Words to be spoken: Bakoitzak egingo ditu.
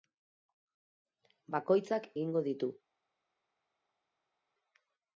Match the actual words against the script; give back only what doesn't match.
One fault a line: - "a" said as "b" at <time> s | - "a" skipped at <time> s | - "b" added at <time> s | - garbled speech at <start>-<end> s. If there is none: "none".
none